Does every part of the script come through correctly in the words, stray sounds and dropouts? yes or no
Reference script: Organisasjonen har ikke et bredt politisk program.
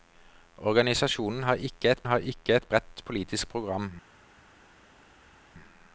no